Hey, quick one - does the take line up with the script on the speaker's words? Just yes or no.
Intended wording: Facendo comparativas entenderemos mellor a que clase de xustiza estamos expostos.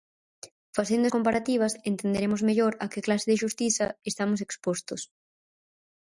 yes